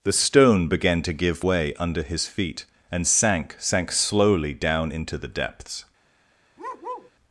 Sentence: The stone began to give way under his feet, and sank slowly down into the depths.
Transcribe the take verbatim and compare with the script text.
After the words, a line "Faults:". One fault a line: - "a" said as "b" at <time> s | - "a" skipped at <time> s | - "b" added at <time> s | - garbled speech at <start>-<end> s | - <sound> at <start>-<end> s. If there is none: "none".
The stone began to give way under his feet, and sank sank slowly down into the depths.
Faults:
- "sank" added at 3.6 s
- bark at 6.6-7.1 s